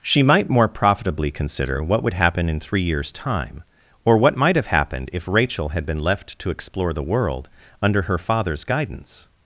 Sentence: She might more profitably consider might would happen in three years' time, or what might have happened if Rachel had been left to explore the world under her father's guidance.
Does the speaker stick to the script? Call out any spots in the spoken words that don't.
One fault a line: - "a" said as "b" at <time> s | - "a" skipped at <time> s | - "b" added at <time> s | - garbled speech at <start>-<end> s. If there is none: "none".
- "might" said as "what" at 1.8 s